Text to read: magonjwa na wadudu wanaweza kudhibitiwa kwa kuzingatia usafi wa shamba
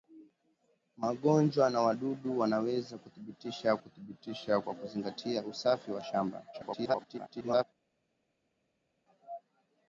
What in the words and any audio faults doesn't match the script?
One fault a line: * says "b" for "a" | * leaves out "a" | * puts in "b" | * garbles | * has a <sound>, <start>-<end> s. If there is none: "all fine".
* puts in "kudhibitiwa"
* garbles